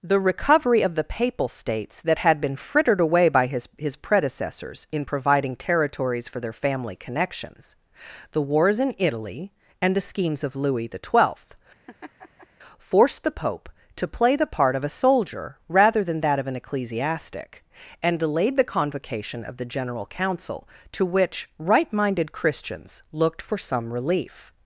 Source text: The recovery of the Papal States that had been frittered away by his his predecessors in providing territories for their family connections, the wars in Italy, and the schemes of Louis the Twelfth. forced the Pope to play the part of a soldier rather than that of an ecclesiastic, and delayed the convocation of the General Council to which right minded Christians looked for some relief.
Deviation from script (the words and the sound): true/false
true